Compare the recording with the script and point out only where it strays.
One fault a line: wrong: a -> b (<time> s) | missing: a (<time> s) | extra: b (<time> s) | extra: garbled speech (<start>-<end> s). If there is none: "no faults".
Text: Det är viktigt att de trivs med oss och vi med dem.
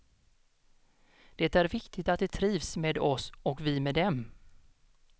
no faults